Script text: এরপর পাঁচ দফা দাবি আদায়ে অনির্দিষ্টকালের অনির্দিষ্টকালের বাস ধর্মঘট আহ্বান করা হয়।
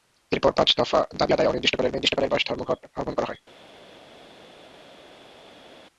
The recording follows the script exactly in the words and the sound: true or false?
true